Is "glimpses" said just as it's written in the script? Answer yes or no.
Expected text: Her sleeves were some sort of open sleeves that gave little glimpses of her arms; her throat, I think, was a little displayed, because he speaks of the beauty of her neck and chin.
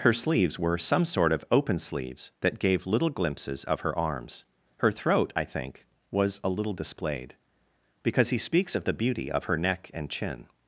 yes